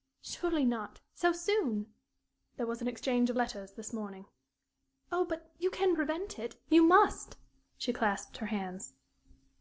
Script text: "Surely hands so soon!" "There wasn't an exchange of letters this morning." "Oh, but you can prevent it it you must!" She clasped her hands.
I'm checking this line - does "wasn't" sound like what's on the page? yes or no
no